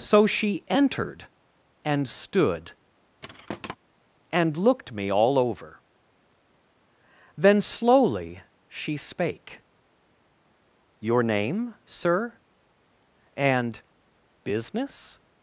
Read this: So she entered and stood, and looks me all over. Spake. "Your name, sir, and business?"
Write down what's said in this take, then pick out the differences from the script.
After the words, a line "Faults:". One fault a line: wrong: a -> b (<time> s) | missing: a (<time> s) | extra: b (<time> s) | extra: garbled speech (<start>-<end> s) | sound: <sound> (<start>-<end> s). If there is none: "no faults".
So she entered and stood, and looked me all over. Then slowly she spake. "Your name, sir, and business?"
Faults:
sound: thud (3.2-3.8 s)
wrong: looks -> looked (4.5 s)
extra: Then slowly she (7.3 s)